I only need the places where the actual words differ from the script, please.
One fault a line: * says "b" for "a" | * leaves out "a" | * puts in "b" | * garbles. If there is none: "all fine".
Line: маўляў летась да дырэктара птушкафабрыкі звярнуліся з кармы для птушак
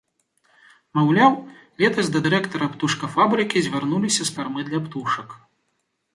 all fine